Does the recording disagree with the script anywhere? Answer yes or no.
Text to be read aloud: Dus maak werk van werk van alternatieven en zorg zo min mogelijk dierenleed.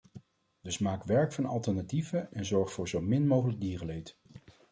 yes